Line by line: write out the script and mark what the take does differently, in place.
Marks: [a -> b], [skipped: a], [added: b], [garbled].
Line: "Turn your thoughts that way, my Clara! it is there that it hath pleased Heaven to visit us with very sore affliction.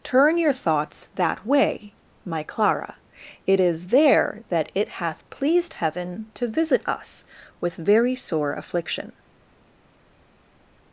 "Turn your thoughts that way, my Clara! it is there that it hath pleased Heaven to visit us with very sore affliction.